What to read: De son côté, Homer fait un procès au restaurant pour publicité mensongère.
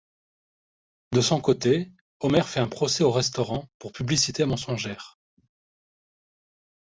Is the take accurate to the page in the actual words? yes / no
yes